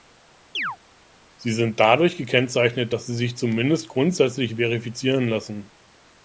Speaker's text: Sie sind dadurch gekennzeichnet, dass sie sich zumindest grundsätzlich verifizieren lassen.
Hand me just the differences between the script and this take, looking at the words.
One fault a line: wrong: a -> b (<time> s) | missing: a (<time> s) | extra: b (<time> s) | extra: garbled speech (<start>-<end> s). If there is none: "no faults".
no faults